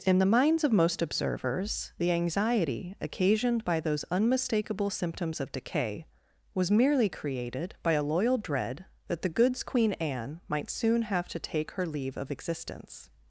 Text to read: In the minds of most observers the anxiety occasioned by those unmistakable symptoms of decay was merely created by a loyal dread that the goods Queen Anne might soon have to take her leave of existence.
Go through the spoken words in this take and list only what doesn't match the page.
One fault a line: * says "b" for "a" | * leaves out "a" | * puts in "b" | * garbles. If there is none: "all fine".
all fine